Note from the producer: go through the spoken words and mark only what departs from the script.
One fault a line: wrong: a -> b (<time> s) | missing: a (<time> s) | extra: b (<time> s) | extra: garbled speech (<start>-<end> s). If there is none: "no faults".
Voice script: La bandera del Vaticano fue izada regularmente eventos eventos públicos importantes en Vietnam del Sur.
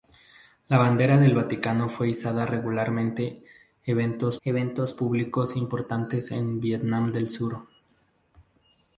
no faults